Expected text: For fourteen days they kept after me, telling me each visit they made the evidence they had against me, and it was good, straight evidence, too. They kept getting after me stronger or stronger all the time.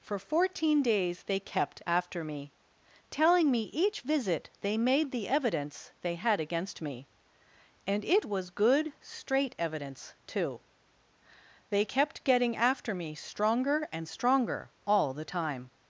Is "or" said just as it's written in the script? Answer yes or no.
no